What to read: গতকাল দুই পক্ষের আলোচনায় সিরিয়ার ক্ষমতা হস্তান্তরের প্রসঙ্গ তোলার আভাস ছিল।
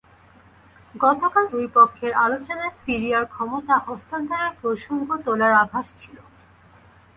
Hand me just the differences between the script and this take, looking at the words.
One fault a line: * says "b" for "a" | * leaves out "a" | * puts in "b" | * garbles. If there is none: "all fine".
all fine